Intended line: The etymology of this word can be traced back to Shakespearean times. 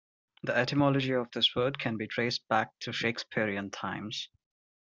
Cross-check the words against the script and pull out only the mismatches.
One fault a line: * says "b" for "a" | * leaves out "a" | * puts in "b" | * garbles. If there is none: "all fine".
all fine